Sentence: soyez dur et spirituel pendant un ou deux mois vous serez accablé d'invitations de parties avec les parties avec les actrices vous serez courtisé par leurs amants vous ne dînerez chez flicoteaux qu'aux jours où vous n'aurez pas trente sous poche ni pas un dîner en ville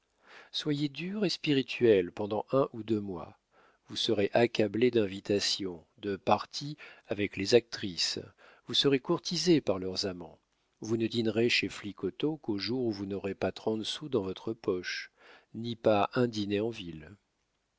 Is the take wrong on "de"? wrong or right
right